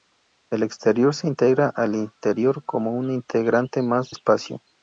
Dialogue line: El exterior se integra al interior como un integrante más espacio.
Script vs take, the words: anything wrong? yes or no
no